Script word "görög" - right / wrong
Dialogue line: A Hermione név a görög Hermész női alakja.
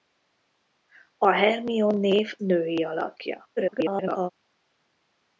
wrong